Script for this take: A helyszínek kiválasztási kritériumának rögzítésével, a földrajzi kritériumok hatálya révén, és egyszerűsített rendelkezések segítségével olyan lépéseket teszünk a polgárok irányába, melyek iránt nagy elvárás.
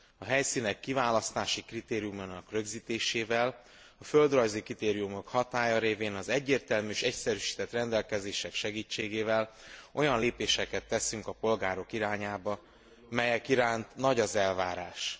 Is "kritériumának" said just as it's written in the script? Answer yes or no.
yes